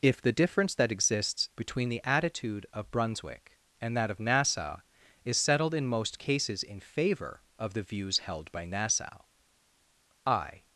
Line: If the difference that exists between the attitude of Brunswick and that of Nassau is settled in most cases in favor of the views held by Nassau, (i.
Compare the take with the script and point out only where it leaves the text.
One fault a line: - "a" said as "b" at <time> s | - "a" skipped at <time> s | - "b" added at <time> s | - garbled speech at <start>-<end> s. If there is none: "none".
none